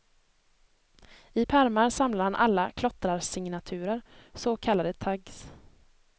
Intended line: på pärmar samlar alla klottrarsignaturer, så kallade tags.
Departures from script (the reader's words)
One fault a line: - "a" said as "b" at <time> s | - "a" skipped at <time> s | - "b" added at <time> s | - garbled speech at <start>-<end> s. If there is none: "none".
- "på" said as "I" at 1.3 s
- "han" added at 2.2 s